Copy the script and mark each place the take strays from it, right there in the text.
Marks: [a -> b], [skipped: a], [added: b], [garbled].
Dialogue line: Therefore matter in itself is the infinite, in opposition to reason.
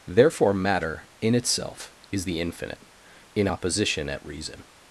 Therefore matter in itself is the infinite, in opposition [to -> at] reason.